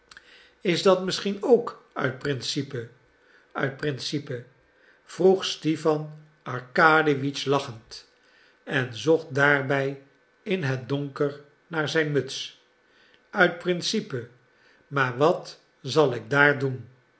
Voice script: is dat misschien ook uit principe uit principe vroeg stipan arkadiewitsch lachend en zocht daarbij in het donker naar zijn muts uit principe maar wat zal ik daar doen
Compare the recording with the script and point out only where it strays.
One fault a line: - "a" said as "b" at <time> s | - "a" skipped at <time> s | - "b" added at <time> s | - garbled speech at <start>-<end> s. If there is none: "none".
none